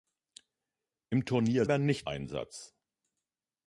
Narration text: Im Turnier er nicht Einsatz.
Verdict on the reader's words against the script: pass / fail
pass